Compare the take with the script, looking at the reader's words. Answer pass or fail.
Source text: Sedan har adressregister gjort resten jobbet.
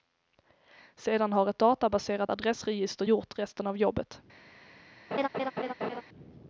fail